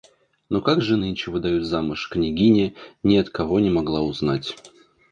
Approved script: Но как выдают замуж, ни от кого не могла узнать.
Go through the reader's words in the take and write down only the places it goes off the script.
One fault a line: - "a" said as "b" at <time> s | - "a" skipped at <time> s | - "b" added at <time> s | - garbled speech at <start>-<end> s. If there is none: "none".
- "же нынче" added at 0.8 s
- "княгиня" added at 2.1 s